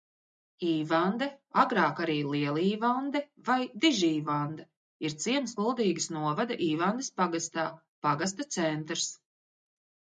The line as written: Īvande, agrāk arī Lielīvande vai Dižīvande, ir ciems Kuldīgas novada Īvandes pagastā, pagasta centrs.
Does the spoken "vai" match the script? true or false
true